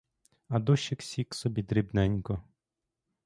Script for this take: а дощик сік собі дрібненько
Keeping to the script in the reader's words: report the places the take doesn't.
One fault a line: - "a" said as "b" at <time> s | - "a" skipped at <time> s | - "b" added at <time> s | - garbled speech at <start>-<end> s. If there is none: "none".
none